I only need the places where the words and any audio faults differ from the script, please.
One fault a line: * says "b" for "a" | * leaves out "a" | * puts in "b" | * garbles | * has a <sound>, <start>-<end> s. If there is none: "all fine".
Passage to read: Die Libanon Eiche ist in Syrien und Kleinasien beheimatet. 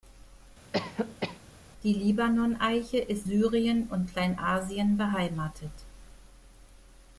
* has a cough, 0.7-1.4 s
* leaves out "in"